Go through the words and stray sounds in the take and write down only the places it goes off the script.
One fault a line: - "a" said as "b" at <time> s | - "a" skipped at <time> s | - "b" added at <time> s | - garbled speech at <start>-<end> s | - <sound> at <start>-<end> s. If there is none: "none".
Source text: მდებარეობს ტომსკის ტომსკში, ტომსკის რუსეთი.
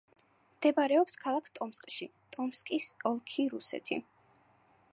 - "ტომსკის" said as "ქალაქ" at 1.2 s
- "ოლქი" added at 3.1 s